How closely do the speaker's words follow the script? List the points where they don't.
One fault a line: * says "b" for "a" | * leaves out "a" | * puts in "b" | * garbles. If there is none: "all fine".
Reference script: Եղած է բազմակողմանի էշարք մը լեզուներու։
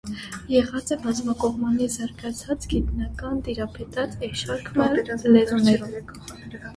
* puts in "զարգացած գիտնական տիրապետած"